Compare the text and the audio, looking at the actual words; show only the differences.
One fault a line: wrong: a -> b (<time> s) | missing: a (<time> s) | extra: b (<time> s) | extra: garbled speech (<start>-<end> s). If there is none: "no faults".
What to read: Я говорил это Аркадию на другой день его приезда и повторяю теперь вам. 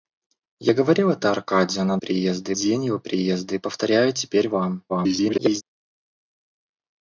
wrong: другой -> приезда (2.0 s)
extra: garbled speech (4.9-5.6 s)